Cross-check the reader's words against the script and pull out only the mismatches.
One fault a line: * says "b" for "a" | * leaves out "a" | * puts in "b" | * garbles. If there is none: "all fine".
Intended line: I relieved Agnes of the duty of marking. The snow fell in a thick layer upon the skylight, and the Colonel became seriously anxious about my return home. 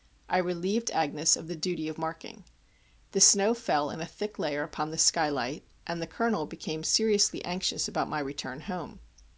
all fine